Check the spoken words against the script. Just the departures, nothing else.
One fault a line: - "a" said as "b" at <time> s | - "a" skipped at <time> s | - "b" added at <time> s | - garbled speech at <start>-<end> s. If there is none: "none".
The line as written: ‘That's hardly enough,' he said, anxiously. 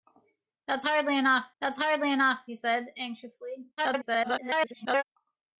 - "that's hardly enough" added at 1.6 s
- garbled speech at 3.8-5.0 s